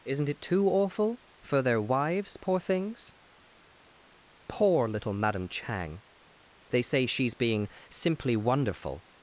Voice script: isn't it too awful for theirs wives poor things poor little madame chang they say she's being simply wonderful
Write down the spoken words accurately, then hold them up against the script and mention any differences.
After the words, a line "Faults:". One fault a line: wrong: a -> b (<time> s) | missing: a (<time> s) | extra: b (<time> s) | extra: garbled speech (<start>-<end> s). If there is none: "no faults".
isn't it too awful for their wives poor things poor little madame chang they say she's being simply wonderful
Faults:
wrong: theirs -> their (1.6 s)